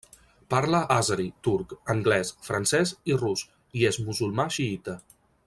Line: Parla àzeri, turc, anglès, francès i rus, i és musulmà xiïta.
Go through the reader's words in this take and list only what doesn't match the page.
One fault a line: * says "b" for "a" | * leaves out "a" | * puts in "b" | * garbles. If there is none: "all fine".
all fine